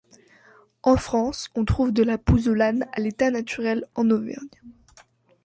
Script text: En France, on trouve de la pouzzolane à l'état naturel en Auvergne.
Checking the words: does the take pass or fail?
pass